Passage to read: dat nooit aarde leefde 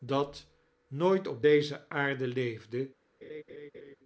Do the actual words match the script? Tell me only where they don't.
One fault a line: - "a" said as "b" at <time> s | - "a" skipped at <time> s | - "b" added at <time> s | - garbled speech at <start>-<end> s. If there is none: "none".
- "op deze" added at 1.3 s